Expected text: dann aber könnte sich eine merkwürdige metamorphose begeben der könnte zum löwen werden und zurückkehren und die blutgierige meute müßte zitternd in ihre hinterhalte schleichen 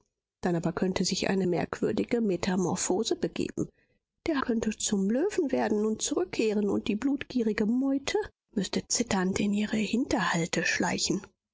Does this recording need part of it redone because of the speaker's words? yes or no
no